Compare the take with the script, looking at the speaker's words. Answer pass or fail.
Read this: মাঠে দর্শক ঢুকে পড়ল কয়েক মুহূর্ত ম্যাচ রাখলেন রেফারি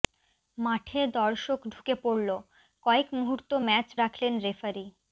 pass